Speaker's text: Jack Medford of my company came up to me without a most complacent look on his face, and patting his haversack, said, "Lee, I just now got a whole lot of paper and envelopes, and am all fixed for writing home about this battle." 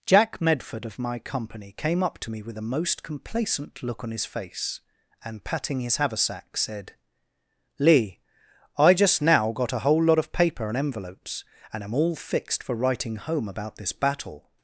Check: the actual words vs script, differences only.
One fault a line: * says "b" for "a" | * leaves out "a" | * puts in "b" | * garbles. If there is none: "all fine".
* says "with" for "without"